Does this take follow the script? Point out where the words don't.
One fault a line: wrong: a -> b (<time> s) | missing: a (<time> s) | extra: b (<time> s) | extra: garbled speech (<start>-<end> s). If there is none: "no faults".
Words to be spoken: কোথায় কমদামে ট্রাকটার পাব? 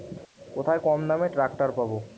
no faults